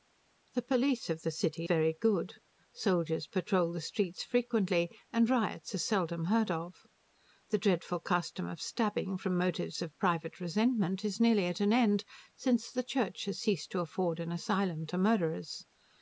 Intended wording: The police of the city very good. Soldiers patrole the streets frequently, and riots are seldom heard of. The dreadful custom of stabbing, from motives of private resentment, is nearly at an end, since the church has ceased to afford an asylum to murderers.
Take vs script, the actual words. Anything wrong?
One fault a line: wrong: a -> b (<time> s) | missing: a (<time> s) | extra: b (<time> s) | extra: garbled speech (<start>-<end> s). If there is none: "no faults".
no faults